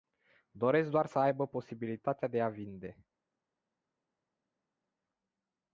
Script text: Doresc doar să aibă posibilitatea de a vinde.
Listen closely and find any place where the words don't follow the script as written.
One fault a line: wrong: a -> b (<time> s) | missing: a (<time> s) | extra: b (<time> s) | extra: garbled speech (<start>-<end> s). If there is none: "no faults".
no faults